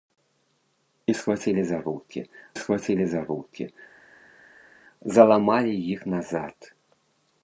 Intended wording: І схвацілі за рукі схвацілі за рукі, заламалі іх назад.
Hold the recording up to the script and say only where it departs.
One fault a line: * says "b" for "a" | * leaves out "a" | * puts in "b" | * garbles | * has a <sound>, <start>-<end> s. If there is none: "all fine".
all fine